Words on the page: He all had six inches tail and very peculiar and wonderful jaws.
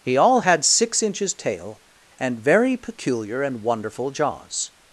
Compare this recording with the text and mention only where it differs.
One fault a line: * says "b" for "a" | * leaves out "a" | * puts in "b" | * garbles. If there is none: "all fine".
all fine